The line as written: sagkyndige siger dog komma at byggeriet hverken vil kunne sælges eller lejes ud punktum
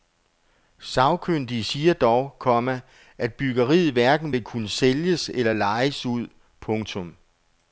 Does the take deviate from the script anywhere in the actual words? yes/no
no